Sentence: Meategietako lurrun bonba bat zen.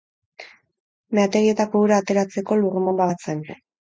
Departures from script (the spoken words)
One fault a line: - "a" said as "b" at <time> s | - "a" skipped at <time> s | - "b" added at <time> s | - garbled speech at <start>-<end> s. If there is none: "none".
- "ura ateratzeko" added at 1.9 s